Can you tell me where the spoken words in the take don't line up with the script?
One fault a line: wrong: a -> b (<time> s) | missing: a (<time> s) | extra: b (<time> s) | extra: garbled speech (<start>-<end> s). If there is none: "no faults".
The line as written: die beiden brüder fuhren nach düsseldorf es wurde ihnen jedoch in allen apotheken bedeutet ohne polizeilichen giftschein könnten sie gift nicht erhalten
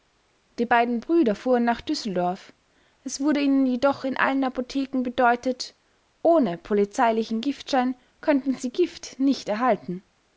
no faults